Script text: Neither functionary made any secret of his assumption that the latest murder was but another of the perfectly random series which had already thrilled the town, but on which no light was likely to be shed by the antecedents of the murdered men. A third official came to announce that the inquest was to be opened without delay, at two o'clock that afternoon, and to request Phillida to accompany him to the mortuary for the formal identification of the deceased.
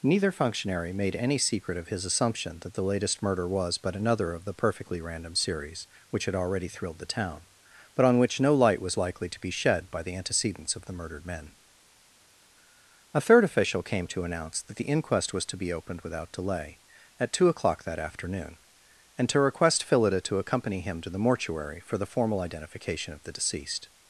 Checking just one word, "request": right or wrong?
right